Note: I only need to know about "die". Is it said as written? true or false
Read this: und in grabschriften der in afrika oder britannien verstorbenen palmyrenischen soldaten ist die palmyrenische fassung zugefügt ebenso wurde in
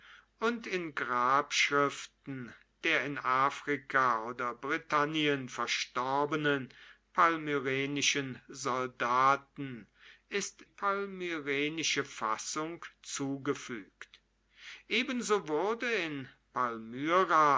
false